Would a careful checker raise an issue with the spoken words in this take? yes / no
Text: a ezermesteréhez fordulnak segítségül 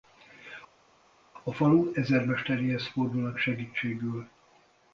yes